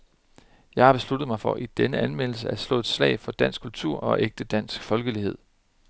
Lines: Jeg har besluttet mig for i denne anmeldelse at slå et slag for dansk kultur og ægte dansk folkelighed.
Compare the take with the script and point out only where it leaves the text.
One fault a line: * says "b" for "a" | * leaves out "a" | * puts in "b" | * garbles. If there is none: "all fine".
all fine